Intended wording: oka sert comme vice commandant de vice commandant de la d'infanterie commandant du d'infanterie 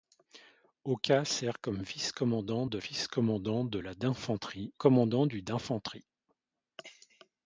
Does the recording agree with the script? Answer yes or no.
yes